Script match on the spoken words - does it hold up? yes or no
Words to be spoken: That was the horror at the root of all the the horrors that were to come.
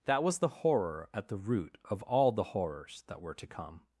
no